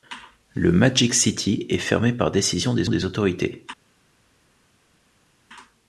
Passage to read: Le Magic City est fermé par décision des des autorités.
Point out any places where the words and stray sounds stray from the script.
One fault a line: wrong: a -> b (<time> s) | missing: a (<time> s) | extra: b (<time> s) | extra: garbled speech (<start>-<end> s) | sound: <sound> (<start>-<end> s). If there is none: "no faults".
no faults